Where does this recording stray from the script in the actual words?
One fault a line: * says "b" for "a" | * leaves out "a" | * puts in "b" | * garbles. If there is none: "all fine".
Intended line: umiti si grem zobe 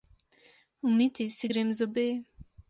all fine